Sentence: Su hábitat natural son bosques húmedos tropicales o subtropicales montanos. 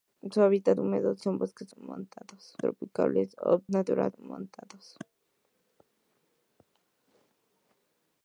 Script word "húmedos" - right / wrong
wrong